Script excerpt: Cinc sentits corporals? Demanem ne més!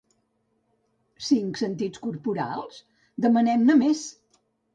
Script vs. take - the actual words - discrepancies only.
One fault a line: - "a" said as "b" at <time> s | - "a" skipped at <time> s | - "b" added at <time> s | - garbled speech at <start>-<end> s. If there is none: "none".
none